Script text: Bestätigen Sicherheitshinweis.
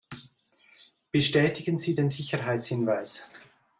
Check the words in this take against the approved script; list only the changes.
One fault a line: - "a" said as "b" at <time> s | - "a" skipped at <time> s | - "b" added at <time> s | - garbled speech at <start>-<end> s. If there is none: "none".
- "Sie den" added at 1.8 s